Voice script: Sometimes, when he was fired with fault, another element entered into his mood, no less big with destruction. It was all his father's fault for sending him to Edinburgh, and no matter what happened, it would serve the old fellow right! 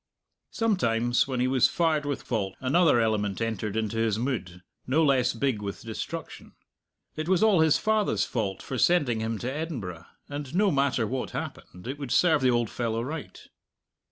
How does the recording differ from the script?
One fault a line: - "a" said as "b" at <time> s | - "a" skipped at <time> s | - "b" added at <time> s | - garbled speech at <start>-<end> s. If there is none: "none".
none